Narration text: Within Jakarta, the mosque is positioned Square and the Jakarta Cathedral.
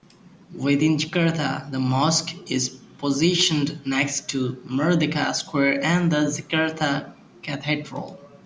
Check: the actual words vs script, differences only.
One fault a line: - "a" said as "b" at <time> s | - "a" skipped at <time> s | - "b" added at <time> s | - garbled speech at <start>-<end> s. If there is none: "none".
- "next to Merdeka" added at 3.9 s